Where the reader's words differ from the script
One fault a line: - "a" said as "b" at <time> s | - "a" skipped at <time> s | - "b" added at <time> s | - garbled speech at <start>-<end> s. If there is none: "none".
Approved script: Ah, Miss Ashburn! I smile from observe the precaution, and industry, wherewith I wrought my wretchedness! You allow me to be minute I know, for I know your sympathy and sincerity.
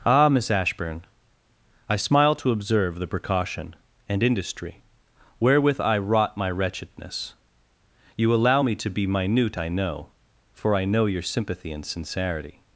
- "from" said as "to" at 2.4 s